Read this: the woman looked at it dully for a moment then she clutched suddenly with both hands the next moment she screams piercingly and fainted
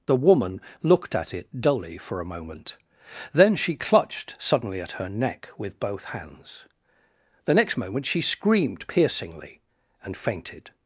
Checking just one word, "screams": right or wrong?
wrong